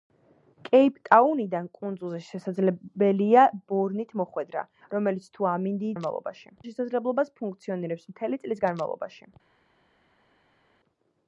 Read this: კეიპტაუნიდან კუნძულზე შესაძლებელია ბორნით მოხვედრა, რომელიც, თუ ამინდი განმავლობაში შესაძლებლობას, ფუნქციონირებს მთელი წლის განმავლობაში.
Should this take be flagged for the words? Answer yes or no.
no